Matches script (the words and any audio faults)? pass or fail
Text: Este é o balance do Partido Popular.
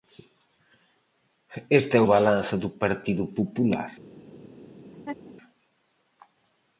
fail